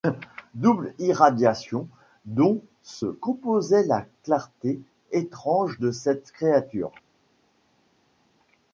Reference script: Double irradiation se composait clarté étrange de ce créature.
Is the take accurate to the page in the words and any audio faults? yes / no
no